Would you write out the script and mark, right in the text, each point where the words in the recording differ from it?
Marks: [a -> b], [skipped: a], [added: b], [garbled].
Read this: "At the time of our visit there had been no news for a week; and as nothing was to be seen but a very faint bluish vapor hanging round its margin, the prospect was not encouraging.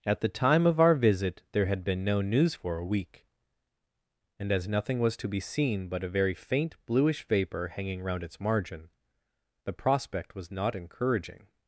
"At the time of our visit there had been no news for a week; and as nothing was to be seen but a very faint bluish vapor hanging round its margin, the prospect was not encouraging.